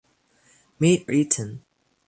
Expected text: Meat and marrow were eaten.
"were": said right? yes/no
no